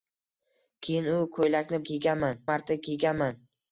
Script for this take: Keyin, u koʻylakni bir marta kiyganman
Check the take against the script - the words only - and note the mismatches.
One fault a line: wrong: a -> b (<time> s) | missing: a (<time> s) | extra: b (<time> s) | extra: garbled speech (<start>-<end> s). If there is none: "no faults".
wrong: bir -> kiyganman (1.9 s)